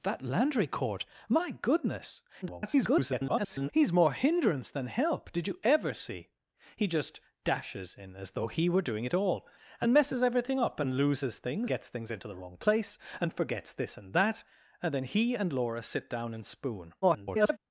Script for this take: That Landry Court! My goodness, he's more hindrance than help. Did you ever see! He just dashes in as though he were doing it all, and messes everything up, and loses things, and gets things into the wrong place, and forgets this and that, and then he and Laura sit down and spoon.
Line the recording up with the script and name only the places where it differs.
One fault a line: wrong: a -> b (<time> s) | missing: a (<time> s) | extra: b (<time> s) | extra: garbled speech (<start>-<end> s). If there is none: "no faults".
extra: garbled speech (2.4-3.7 s)
missing: and (11.7 s)
extra: garbled speech (17.0-17.6 s)